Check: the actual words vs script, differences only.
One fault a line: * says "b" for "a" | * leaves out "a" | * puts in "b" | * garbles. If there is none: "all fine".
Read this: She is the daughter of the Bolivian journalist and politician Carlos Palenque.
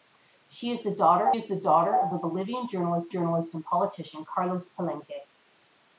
* puts in "is the daughter"
* puts in "journalist"